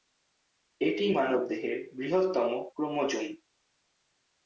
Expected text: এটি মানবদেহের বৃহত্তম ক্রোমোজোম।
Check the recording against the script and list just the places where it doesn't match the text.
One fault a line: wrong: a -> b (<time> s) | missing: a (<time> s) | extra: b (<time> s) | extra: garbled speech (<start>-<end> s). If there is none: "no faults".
no faults